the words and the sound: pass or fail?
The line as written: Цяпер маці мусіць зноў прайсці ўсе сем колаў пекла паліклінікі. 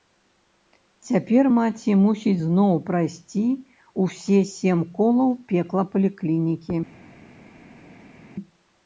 pass